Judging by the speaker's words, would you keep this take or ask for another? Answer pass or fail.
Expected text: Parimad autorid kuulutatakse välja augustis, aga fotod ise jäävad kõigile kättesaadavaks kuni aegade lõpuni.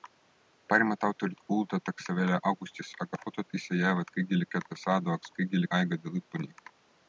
fail